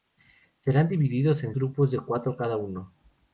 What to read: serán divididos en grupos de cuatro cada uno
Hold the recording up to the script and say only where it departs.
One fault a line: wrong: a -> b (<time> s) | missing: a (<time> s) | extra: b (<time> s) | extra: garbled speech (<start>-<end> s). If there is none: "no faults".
no faults